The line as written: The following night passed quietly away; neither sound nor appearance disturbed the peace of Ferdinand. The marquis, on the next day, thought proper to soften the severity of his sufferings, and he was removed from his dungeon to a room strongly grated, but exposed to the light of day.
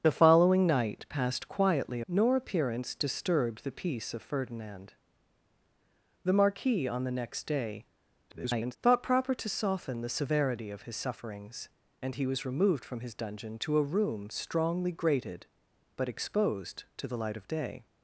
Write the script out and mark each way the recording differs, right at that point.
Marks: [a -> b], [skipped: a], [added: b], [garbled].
The following night passed quietly [skipped: away; neither sound] nor appearance disturbed the peace of Ferdinand. The marquis, on the next day, [garbled] thought proper to soften the severity of his sufferings, and he was removed from his dungeon to a room strongly grated, but exposed to the light of day.